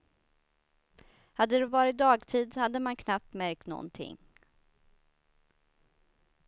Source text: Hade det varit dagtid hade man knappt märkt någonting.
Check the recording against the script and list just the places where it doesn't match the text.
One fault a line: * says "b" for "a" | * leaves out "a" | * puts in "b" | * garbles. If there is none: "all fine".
all fine